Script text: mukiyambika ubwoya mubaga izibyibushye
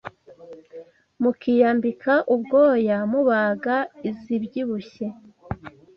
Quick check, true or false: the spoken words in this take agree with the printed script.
true